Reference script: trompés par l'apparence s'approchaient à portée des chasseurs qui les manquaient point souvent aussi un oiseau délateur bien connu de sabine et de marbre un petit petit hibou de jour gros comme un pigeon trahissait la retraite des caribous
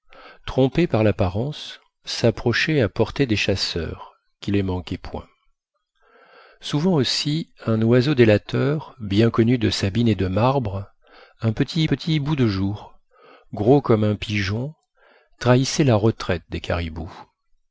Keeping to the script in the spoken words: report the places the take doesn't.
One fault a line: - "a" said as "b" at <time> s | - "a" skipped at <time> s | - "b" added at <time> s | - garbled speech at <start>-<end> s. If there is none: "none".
none